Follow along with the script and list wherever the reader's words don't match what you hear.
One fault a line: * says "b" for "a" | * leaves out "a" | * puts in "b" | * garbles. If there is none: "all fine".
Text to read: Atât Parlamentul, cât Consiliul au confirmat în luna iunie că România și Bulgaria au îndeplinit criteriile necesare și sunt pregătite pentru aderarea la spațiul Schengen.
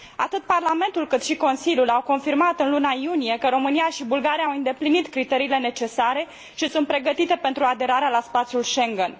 * puts in "și"